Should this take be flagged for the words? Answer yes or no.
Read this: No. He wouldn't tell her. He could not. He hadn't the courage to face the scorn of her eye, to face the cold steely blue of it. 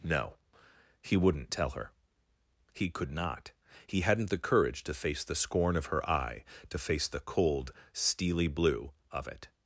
no